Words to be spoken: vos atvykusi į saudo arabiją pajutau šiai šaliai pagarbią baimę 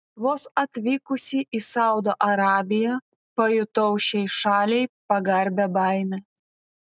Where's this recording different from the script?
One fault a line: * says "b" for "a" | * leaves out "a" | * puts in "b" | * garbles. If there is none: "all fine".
all fine